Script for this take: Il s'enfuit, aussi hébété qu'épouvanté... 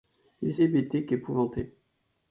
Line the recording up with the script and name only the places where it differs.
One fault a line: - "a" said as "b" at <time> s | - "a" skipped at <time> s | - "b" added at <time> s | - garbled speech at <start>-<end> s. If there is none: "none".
- "s'enfuit aussi" skipped at 0.6 s